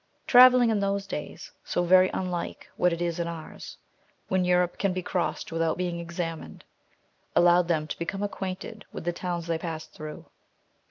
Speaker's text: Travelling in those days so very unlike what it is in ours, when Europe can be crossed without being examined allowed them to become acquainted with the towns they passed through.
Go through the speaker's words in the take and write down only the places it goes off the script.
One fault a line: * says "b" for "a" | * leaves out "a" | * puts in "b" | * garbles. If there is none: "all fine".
all fine